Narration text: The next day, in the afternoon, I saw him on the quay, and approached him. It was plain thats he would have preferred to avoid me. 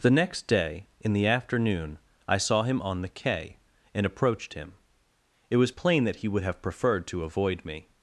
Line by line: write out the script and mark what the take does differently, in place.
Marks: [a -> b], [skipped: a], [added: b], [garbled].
The next day, in the afternoon, I saw him on the quay, and approached him. It was plain [thats -> that] he would have preferred to avoid me.